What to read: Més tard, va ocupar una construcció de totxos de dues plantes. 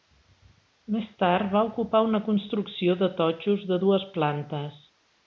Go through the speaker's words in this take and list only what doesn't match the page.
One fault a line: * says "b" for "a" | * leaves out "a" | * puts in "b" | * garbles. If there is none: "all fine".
all fine